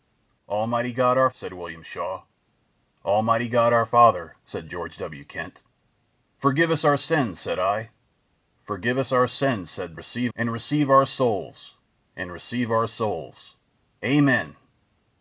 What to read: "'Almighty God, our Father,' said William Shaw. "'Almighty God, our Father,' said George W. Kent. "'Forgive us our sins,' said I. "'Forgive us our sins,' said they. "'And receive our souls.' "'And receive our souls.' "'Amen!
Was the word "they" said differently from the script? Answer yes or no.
yes